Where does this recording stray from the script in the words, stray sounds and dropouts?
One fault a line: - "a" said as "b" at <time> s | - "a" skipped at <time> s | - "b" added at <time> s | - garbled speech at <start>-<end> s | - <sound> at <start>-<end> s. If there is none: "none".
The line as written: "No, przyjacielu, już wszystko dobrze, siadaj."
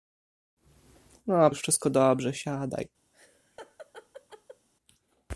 - "przyjacielu" skipped at 1.5 s
- laugh at 3.1-4.7 s